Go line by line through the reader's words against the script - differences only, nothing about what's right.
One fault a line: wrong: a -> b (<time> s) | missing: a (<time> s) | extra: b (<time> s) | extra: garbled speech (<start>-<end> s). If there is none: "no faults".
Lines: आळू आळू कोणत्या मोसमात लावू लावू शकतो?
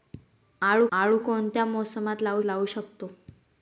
no faults